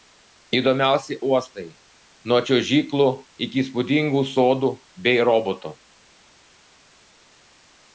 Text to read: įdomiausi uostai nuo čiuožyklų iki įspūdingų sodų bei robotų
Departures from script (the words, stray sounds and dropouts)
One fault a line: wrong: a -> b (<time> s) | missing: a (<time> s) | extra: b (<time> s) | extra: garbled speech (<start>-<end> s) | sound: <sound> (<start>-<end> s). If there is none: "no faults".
no faults